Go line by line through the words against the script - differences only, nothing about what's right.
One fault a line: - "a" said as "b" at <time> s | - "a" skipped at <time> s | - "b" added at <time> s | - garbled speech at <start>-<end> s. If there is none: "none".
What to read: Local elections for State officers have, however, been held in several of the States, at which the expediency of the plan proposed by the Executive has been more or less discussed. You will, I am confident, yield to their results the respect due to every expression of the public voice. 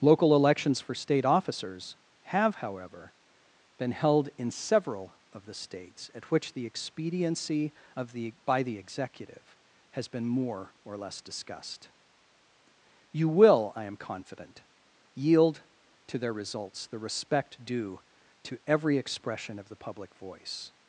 - "plan proposed" skipped at 8.3 s